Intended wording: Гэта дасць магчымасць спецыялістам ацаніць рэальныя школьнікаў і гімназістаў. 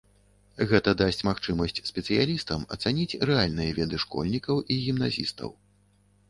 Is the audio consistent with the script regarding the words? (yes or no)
no